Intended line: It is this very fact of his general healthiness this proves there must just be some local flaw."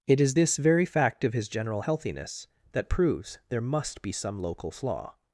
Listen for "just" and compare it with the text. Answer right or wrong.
wrong